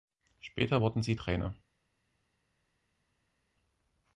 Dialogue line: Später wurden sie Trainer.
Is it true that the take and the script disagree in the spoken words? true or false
false